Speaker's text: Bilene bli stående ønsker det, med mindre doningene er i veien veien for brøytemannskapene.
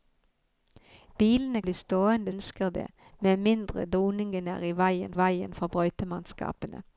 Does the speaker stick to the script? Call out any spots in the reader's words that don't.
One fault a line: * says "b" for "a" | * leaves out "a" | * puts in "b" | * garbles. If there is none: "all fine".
all fine